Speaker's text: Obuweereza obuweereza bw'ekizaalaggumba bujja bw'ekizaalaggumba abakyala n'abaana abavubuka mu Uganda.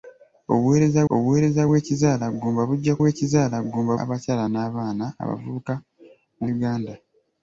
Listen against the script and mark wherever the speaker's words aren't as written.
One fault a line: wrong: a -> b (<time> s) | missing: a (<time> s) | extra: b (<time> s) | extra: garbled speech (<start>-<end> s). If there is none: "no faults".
no faults